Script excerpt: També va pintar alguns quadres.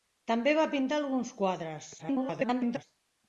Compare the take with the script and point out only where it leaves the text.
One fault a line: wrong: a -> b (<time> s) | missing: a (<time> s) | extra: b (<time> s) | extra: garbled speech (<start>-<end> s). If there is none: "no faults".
extra: garbled speech (2.0-2.8 s)